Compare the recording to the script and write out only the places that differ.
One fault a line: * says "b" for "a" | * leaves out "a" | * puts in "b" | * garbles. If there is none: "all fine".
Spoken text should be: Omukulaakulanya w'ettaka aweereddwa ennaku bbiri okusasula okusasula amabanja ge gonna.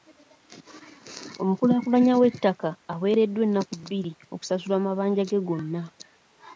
* leaves out "okusasula"